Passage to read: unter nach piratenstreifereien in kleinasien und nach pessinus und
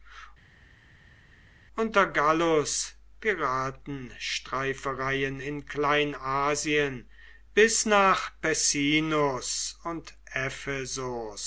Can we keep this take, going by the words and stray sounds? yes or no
no